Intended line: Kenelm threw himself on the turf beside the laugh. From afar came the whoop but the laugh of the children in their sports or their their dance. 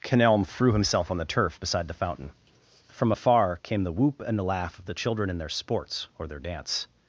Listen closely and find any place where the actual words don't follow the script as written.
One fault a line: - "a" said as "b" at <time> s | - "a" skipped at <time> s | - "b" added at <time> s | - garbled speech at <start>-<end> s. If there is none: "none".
- "laugh" said as "fountain" at 1.9 s
- "but" said as "and" at 4.3 s
- "their" skipped at 6.4 s